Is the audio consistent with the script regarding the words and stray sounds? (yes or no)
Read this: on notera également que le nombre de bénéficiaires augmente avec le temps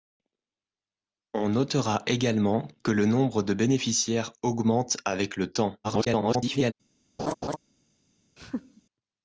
no